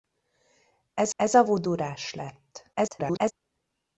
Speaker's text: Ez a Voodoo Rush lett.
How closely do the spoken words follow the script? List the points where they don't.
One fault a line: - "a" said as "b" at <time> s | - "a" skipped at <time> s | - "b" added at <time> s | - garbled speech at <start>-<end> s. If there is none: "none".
- "ez" added at 1.1 s
- garbled speech at 2.7-3.3 s